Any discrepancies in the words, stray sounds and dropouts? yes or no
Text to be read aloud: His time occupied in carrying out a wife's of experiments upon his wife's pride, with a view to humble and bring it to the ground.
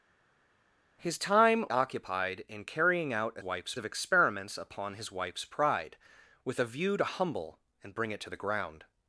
no